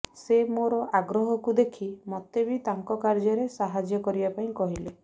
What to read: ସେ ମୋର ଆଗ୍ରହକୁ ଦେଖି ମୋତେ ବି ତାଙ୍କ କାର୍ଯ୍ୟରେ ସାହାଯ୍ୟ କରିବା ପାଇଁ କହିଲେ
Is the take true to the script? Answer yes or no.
yes